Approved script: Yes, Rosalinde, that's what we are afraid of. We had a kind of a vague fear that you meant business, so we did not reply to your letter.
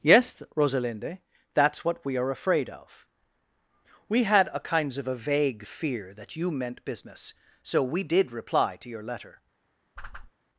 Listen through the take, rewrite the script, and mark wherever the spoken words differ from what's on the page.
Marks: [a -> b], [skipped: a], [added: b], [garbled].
Yes, Rosalinde, that's what we are afraid of. We had a [kind -> kinds] of a vague fear that you meant business, so we did [skipped: not] reply to your letter.